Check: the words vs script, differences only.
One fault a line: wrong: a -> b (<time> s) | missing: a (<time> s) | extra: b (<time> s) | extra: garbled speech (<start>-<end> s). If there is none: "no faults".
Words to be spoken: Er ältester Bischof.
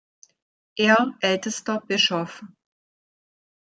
no faults